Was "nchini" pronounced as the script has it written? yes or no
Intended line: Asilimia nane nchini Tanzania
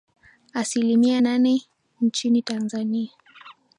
yes